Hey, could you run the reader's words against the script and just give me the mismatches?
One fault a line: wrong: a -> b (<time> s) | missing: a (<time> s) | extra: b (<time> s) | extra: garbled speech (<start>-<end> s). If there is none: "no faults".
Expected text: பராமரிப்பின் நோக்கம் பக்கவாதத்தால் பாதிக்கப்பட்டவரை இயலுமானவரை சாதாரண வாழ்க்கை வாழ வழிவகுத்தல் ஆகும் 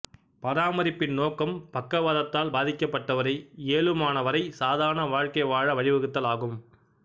no faults